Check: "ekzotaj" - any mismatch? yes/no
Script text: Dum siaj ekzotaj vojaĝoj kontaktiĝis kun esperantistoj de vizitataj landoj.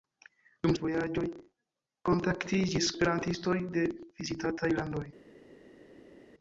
yes